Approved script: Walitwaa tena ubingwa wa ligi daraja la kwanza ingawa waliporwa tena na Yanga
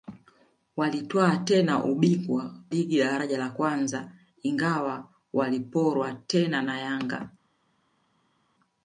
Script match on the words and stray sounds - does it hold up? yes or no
no